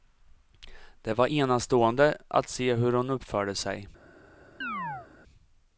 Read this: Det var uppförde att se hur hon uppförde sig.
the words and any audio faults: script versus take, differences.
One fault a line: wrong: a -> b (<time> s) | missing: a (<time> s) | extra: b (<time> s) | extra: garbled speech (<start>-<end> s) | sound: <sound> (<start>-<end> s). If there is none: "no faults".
wrong: uppförde -> enastående (1.2 s)
sound: chirp (4.6-5.1 s)